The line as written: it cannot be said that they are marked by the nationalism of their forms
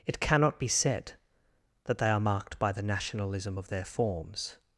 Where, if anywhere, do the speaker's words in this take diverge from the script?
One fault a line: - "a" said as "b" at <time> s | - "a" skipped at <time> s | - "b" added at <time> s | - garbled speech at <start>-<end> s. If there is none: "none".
none